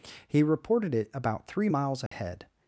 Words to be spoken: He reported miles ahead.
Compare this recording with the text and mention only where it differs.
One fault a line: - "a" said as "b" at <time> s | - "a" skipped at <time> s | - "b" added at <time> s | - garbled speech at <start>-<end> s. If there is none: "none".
- "it about three" added at 0.9 s